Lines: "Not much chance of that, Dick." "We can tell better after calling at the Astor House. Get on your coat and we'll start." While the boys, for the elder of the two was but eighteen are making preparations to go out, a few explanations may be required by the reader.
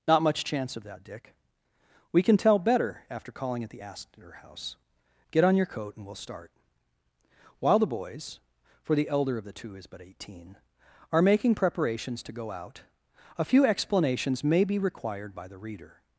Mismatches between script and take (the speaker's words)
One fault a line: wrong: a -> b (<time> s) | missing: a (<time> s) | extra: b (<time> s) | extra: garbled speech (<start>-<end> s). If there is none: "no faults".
wrong: was -> is (9.8 s)